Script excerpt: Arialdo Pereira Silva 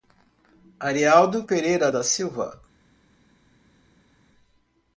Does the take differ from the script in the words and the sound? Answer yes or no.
yes